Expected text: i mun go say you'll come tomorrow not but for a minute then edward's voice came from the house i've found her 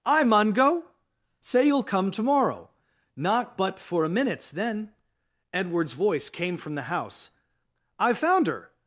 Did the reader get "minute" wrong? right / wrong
wrong